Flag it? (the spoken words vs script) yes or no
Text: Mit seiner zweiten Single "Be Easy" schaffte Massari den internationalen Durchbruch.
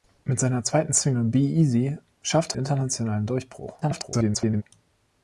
yes